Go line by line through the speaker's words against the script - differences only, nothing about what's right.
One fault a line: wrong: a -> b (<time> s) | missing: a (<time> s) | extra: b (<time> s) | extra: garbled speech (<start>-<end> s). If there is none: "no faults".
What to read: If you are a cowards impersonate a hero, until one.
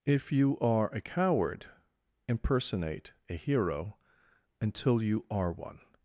wrong: cowards -> coward (1.0 s)
extra: you are (5.0 s)